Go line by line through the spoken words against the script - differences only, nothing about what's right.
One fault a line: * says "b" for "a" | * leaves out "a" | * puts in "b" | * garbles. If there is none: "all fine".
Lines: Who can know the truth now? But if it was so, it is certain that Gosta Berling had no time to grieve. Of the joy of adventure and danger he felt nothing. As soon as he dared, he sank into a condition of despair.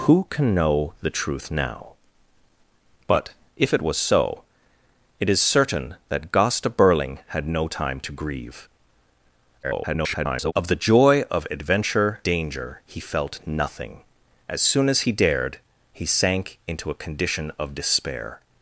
* garbles
* leaves out "and"